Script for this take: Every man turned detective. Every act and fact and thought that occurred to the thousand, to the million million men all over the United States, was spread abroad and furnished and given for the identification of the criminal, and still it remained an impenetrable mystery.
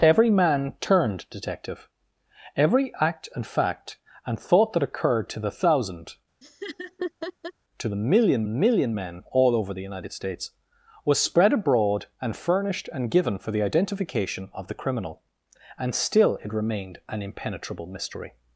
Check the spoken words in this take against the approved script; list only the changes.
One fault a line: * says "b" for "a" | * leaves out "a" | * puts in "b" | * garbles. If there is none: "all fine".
all fine